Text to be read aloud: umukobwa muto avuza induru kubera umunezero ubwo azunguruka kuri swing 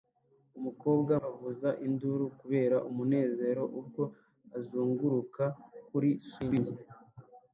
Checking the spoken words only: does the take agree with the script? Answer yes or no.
no